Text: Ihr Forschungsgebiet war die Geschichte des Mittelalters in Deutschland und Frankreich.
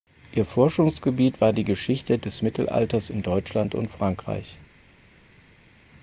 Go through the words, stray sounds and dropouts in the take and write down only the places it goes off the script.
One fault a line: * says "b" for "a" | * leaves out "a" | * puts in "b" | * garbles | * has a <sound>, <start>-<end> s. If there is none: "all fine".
all fine